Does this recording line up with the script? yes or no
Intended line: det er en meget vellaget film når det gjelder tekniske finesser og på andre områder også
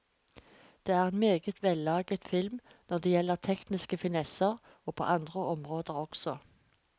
yes